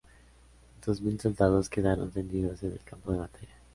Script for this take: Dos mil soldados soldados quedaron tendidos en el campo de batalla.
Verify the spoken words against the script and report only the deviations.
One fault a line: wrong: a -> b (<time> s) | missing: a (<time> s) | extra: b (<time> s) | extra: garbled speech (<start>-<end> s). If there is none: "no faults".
missing: soldados (1.7 s)